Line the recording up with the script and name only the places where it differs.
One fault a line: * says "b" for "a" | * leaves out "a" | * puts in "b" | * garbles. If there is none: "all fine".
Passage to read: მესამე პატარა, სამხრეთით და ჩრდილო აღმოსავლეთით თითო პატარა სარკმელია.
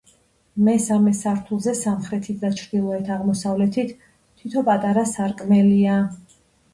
* says "სართულზე" for "პატარა"